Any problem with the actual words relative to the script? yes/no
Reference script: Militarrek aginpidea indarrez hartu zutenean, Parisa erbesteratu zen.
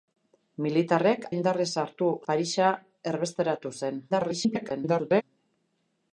yes